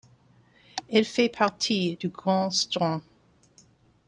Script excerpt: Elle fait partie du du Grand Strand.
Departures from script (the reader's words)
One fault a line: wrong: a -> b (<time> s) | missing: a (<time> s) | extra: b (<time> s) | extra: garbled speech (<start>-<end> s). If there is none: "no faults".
missing: du (2.1 s)